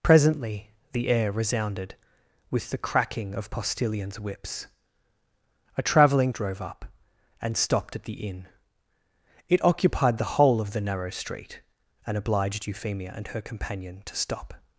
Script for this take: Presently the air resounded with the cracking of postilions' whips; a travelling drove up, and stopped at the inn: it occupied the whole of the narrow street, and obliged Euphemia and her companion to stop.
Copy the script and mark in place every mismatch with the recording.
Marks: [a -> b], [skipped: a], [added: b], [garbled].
Presently the air resounded with the cracking of postilions' whips; a travelling drove up, and stopped at the inn: it occupied the whole of the narrow street, and obliged Euphemia and her companion to stop.